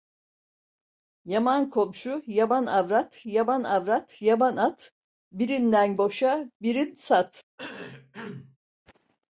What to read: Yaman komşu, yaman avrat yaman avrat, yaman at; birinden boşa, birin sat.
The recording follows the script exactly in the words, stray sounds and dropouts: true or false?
false